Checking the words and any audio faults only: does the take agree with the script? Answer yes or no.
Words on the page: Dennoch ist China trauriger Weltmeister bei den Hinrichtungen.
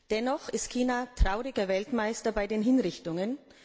yes